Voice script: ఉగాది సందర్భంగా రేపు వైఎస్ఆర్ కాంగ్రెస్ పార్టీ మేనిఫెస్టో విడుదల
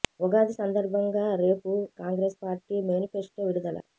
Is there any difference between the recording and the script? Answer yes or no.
yes